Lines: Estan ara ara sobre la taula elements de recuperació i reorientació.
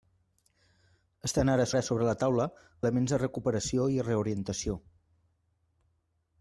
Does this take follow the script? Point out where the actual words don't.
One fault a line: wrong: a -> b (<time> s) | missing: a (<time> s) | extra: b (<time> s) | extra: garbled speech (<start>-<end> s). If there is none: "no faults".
no faults